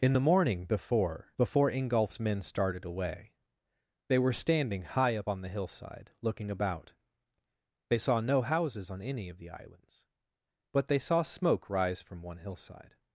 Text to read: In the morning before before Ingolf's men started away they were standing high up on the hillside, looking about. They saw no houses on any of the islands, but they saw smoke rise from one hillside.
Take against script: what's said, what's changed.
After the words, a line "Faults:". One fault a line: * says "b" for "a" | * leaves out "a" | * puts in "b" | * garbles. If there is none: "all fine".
In the morning before before Ingolf's men started away they were standing high up on the hillside, looking about. They saw no houses on any of the islands, but they saw smoke rise from one hillside.
Faults:
all fine